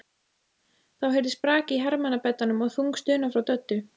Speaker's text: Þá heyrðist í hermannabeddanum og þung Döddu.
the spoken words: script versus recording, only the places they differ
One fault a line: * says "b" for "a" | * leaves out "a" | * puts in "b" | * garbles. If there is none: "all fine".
* puts in "brak"
* puts in "stuna frá"